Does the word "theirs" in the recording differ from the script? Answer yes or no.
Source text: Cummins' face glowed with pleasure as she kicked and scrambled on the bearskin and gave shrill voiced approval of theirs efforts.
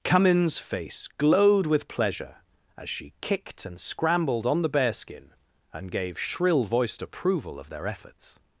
yes